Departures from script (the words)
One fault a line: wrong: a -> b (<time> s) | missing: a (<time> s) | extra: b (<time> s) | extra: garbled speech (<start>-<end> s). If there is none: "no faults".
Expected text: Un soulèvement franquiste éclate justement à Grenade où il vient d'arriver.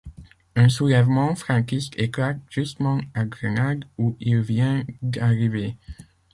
no faults